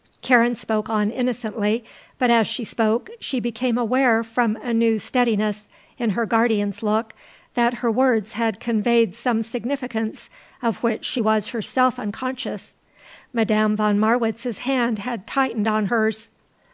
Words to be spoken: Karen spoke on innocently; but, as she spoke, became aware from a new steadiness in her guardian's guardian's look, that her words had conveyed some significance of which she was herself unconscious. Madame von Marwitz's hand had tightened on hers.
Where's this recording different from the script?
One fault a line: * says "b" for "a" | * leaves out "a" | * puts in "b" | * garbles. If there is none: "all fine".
* puts in "she"
* leaves out "guardian's"